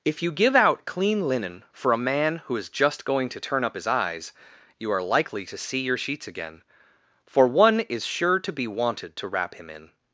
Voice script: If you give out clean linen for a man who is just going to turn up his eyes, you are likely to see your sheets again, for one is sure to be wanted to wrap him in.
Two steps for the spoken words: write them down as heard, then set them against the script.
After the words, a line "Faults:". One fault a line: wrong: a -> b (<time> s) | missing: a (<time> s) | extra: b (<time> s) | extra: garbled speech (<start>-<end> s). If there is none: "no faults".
If you give out clean linen for a man who is just going to turn up his eyes, you are likely to see your sheets again, for one is sure to be wanted to wrap him in.
Faults:
no faults